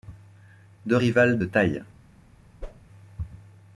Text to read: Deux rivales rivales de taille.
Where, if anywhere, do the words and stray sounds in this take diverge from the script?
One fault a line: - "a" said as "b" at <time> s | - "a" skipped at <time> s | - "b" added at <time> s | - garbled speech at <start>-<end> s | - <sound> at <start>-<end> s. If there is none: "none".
- "rivales" skipped at 1.4 s
- whoosh at 2.6-2.9 s